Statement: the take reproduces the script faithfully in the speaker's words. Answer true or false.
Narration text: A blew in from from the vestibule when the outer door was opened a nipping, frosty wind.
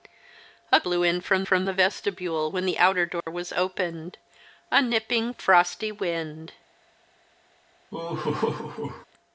true